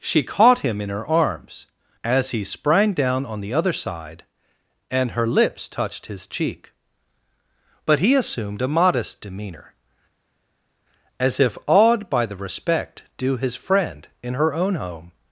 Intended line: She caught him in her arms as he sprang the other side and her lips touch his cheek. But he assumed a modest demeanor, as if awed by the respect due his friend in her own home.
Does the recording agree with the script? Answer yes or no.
no